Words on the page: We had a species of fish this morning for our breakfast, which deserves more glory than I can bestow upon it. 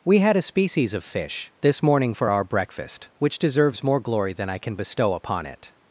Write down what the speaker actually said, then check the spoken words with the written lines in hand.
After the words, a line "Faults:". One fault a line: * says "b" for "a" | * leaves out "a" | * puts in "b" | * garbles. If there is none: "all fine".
We had a species of fish this morning for our breakfast, which deserves more glory than I can bestow upon it.
Faults:
all fine